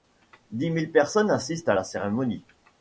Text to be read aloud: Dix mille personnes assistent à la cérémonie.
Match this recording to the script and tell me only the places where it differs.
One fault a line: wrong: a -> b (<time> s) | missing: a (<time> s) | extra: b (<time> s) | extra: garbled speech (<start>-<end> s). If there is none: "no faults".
no faults